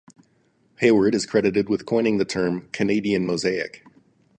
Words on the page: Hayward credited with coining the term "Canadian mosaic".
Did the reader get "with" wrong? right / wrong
right